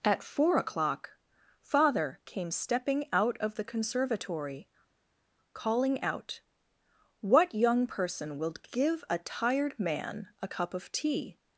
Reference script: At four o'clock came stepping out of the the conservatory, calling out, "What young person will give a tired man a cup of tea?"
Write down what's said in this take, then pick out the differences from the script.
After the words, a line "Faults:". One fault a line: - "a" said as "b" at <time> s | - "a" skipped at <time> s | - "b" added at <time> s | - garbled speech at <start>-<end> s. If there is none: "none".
At four o'clock father came stepping out of the conservatory, calling out, "What young person will give a tired man a cup of tea?"
Faults:
- "father" added at 1.6 s
- "the" skipped at 3.7 s